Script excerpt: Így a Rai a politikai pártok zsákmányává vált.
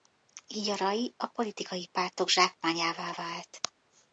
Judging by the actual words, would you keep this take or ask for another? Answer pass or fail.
pass